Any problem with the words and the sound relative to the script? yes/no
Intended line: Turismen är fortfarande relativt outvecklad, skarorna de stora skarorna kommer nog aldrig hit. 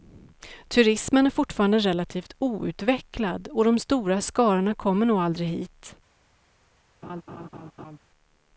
yes